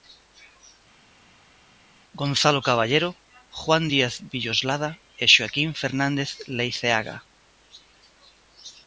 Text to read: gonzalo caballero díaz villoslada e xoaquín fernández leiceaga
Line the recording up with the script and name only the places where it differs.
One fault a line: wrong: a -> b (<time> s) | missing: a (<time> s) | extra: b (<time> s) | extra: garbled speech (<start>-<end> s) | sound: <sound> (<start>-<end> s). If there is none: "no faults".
extra: juan (3.6 s)